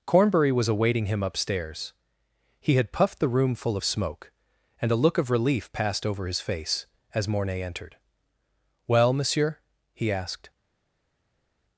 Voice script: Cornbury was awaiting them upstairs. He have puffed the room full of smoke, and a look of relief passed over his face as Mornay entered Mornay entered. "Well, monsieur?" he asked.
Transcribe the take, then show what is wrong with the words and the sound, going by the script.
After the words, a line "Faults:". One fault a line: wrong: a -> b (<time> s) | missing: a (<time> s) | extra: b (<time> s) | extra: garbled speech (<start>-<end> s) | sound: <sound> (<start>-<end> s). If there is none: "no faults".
Cornbury was awaiting him upstairs. He had puffed the room full of smoke, and a look of relief passed over his face as Mornay entered. "Well, monsieur?" he asked.
Faults:
wrong: them -> him (1.1 s)
wrong: have -> had (2.8 s)
missing: Mornay entered (8.0 s)